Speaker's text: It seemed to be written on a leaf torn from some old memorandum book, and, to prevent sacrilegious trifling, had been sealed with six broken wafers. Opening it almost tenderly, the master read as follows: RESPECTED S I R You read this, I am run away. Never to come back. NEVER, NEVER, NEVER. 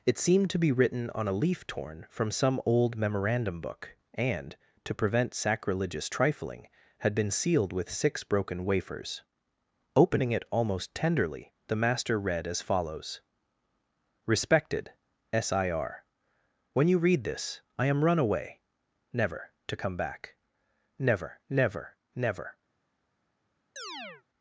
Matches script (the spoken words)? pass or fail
fail